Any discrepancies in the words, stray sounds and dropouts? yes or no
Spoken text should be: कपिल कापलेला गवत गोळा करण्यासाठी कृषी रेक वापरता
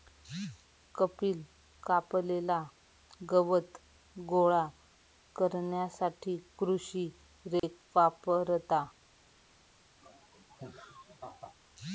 yes